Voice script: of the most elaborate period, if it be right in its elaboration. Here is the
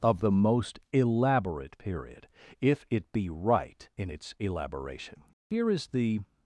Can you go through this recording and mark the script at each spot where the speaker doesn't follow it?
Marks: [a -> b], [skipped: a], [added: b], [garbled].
of the most elaborate period, if it be right in its elaboration. Here is the